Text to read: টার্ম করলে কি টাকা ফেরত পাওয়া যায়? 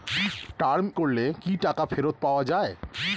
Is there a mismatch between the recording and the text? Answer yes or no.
no